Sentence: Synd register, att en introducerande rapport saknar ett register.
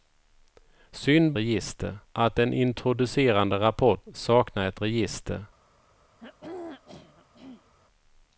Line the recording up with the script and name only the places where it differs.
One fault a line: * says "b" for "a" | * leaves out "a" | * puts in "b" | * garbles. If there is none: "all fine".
all fine